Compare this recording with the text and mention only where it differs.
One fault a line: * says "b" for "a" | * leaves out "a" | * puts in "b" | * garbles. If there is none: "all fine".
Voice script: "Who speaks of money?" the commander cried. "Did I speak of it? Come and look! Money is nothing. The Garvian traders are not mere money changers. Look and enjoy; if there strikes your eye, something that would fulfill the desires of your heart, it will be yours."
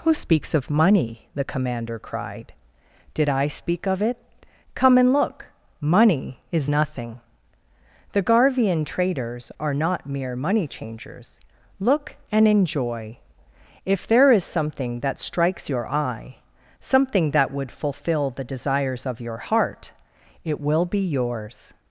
* puts in "is something that"